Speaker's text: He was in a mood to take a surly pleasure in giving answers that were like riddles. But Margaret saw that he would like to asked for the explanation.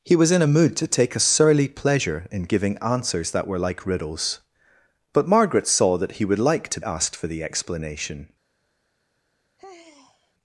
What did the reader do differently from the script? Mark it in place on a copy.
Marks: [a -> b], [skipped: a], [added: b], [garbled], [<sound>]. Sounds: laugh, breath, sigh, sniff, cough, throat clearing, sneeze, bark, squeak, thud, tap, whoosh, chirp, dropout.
He was in a mood to take a surly pleasure in giving answers that were like riddles. But Margaret saw that he would like to asked for the explanation. [sigh]